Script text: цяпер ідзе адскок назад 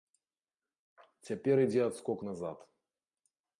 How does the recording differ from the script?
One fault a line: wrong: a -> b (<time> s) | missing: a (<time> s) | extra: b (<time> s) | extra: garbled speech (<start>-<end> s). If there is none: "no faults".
no faults